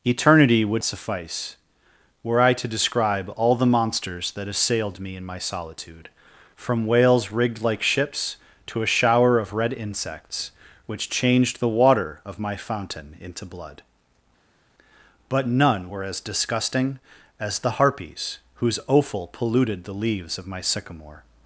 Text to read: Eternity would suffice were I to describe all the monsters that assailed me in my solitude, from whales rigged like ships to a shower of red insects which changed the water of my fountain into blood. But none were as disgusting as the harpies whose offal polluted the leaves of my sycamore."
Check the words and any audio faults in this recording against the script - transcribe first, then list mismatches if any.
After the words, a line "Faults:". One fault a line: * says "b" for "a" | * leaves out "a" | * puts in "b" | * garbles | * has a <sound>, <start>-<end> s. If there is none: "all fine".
Eternity would suffice were I to describe all the monsters that assailed me in my solitude, from whales rigged like ships to a shower of red insects which changed the water of my fountain into blood. But none were as disgusting as the harpies whose offal polluted the leaves of my sycamore."
Faults:
all fine